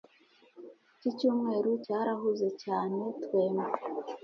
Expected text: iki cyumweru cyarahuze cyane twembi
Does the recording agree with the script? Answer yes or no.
yes